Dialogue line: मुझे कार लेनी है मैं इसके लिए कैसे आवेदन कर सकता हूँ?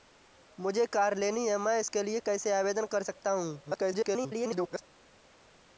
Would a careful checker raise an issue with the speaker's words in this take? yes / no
yes